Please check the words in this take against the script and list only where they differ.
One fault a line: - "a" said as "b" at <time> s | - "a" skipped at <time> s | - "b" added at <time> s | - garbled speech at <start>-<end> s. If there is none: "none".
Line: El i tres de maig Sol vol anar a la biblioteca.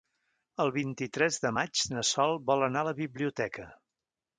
- "vint" added at 0.8 s
- "na" added at 2.0 s